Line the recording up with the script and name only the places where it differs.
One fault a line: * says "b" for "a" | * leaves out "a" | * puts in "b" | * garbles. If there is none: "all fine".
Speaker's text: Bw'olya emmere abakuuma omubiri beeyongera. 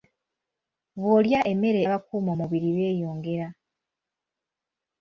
all fine